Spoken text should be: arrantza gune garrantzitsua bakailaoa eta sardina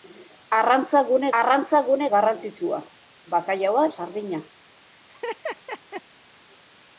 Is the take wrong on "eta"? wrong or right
wrong